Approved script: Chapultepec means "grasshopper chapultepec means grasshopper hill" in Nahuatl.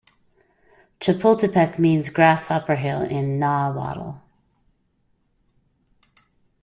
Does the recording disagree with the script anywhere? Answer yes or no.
yes